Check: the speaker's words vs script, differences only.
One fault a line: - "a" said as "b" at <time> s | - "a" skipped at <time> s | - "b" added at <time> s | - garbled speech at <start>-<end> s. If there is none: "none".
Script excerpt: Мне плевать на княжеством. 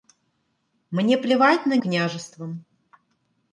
none